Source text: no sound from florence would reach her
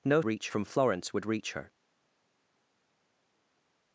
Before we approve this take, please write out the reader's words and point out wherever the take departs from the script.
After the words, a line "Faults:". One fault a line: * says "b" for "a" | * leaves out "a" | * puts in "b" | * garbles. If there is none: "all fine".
no reach from florence would reach her
Faults:
* says "reach" for "sound"